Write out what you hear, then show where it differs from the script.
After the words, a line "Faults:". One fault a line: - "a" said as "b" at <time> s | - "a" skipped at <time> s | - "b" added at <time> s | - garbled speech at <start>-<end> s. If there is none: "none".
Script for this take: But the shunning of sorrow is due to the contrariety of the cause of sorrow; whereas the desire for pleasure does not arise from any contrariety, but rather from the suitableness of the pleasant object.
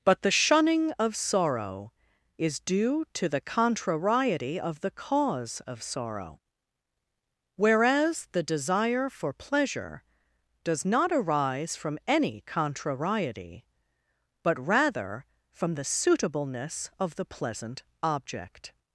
But the shunning of sorrow is due to the contrariety of the cause of sorrow; whereas the desire for pleasure does not arise from any contrariety, but rather from the suitableness of the pleasant object.
Faults:
none